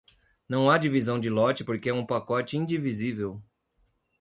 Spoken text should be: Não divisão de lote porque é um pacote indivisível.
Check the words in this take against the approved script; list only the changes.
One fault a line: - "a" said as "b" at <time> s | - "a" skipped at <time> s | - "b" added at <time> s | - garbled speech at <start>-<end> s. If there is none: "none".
- "há" added at 0.7 s